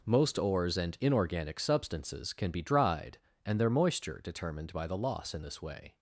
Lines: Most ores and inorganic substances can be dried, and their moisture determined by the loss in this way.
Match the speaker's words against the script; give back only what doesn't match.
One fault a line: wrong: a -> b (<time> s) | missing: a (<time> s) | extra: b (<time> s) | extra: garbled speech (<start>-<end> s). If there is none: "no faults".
no faults